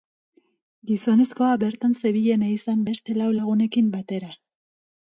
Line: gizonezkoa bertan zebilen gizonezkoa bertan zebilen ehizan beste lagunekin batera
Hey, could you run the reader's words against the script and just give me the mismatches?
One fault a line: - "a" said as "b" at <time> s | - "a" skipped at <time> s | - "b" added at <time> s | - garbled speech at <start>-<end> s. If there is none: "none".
- "gizonezkoa bertan zebilen" skipped at 2.5 s
- "lau" added at 3.2 s